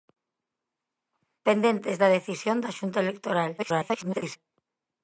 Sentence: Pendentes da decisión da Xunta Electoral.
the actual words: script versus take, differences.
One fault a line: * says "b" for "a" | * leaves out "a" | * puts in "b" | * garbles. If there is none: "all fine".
* garbles